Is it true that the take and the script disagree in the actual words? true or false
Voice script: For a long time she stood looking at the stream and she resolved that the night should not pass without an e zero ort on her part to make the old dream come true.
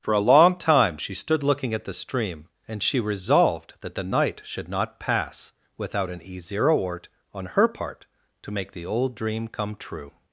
false